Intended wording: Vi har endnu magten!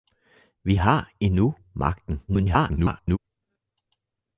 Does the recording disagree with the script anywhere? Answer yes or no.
yes